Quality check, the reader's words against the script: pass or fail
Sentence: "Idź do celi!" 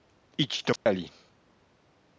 pass